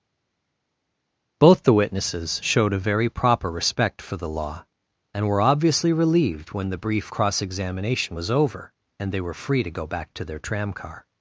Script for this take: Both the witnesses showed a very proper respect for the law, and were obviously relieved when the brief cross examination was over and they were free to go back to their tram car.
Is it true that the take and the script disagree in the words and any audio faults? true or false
false